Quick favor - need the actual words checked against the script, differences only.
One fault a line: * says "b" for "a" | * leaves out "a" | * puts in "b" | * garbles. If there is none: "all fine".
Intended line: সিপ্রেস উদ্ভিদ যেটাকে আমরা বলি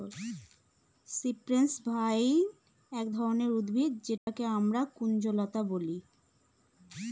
* puts in "ভাইন এক ধরনের"
* puts in "কুঞ্জলতা"